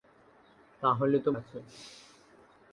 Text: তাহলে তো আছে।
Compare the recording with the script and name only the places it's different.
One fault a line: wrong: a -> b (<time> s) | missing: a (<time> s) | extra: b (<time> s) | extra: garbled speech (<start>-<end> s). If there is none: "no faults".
no faults